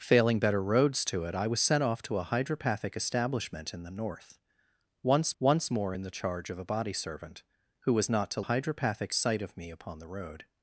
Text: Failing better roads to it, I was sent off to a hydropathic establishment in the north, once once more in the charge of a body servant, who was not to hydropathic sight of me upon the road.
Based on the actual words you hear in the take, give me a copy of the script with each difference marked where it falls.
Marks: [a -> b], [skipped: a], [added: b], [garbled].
Failing better roads to it, I was sent off to a hydropathic establishment in the north, once once more in the charge of a body servant, who was not to hydropathic sight of me upon the road.